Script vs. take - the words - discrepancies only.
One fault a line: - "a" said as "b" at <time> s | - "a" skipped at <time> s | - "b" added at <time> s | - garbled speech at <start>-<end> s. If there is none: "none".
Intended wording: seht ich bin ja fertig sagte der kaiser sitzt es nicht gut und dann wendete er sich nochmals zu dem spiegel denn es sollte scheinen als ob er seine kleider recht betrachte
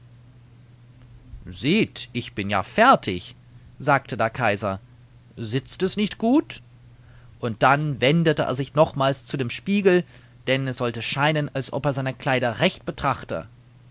none